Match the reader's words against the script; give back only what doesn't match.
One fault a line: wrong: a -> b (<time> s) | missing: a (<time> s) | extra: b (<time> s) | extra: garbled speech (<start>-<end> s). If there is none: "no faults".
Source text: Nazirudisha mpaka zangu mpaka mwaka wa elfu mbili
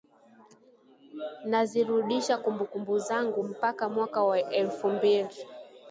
wrong: mpaka -> kumbukumbu (2.4 s)